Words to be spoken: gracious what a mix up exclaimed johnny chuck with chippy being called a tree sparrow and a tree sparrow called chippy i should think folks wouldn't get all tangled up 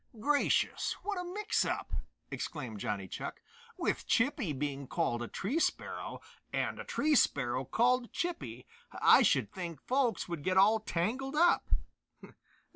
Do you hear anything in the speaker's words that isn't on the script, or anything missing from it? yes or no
yes